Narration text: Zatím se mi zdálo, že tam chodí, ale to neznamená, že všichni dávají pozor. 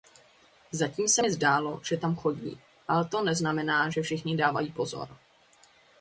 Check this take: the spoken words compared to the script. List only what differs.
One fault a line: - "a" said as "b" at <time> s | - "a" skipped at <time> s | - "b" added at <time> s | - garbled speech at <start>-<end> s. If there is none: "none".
none